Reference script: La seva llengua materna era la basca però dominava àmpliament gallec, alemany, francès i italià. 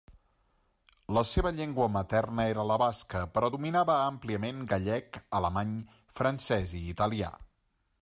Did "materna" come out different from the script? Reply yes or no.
no